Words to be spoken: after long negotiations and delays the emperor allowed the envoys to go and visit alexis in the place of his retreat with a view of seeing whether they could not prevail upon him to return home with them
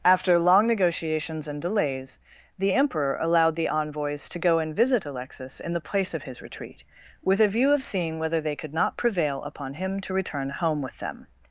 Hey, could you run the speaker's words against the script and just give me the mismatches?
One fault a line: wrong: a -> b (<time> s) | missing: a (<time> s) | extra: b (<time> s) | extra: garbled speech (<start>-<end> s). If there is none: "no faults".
no faults